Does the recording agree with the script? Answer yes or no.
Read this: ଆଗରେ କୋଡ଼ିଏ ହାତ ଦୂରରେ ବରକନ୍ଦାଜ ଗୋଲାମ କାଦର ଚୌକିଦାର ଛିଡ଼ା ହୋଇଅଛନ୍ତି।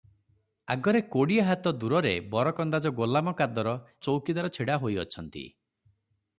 yes